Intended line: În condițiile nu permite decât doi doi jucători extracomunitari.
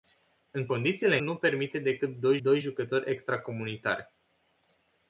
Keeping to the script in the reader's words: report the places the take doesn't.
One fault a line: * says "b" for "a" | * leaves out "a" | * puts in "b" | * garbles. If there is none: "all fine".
all fine